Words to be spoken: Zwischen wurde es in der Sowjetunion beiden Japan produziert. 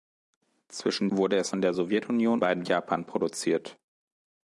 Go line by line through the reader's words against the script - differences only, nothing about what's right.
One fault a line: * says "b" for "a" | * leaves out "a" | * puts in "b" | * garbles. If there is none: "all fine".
all fine